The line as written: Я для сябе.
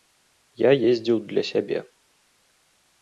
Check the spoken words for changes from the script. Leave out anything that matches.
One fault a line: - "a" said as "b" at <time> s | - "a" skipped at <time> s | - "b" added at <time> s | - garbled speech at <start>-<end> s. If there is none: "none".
- "ездзіў" added at 0.9 s